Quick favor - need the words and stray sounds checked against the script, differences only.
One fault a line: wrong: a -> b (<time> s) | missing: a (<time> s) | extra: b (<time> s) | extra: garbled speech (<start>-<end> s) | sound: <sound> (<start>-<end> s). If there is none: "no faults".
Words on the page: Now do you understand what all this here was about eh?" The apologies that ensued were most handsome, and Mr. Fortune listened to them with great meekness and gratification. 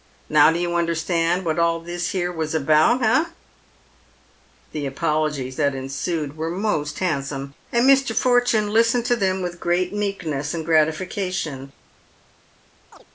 sound: chirp (12.9-13.1 s)